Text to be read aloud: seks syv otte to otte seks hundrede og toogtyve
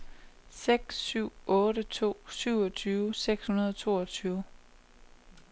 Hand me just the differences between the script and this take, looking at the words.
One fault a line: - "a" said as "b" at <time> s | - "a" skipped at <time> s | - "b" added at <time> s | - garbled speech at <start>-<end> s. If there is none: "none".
- "otte" said as "syvogtyve" at 2.3 s